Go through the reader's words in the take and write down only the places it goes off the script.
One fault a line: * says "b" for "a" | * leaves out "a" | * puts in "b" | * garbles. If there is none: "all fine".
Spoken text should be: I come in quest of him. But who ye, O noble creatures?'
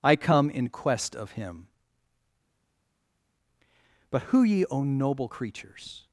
all fine